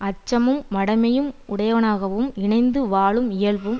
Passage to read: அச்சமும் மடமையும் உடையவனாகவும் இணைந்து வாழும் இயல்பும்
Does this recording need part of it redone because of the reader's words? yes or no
no